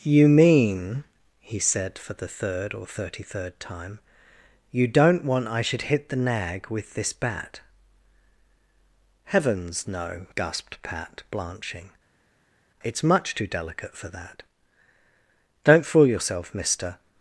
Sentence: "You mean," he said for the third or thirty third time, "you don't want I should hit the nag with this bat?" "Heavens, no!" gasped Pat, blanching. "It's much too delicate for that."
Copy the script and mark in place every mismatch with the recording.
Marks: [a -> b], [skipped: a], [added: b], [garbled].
"You mean," he said for the third or thirty third time, "you don't want I should hit the nag with this bat?" "Heavens, no!" gasped Pat, blanching. "It's much too delicate for that." [added: Don't fool yourself mister]